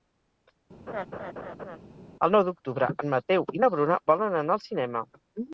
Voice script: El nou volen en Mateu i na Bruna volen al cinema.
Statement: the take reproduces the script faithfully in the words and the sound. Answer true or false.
false